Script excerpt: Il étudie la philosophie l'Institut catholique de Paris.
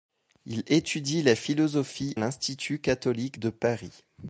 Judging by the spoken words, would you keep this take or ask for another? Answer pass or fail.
pass